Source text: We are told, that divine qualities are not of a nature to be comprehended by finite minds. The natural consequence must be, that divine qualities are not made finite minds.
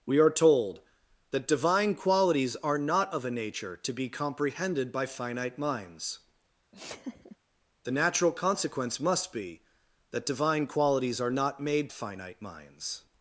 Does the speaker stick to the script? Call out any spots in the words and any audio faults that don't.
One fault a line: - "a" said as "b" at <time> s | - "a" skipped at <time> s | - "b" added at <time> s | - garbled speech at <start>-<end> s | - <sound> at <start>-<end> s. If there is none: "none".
- laugh at 6.7-7.4 s